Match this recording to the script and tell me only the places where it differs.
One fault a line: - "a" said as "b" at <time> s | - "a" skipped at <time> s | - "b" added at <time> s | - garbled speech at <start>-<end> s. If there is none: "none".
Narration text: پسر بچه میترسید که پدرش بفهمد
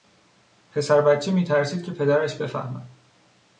none